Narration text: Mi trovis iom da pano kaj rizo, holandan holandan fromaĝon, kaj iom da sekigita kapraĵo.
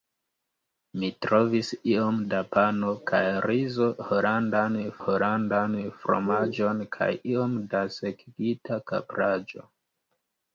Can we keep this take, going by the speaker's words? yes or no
yes